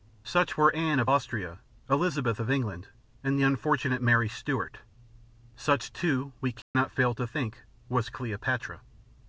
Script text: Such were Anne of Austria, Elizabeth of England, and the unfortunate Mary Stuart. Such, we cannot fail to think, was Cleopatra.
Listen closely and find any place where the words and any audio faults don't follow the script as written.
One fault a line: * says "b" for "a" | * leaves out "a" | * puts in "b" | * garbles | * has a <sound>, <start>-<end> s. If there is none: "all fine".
* puts in "too"
* has a dropout, 6.6-6.7 s